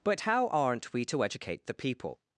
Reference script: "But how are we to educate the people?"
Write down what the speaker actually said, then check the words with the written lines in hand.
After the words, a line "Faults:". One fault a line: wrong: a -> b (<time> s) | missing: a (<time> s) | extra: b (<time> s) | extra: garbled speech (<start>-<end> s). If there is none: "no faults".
"But how aren't we to educate the people?"
Faults:
wrong: are -> aren't (0.5 s)